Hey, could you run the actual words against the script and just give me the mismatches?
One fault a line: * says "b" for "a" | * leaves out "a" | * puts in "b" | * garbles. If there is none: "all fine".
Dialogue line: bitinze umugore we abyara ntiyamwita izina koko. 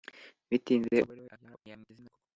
all fine